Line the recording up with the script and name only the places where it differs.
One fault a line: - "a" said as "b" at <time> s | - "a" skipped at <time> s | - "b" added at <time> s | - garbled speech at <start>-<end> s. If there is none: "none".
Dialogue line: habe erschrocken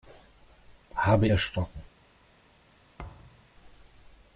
none